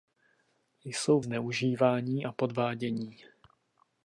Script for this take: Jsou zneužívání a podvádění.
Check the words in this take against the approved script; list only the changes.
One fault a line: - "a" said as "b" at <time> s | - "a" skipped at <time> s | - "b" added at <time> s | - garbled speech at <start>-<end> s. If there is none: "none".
none